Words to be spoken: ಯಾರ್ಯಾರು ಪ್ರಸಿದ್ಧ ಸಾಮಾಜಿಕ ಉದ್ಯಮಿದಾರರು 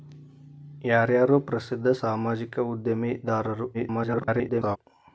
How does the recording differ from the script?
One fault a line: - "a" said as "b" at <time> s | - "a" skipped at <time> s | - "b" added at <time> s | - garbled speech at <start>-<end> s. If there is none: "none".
- garbled speech at 3.7-4.8 s